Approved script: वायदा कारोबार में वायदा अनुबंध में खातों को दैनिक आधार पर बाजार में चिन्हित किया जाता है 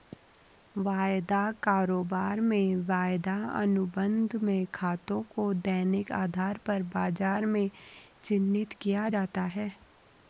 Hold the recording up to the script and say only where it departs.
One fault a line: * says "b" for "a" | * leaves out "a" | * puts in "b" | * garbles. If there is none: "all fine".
all fine